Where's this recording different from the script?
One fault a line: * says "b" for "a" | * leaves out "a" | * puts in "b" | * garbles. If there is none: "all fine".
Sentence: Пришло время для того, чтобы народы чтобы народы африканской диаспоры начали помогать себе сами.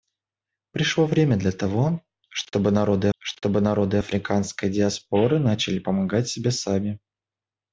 all fine